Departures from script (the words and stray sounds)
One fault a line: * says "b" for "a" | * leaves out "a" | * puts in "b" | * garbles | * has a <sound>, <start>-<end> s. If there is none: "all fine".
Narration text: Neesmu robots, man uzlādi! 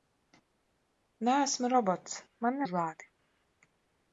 all fine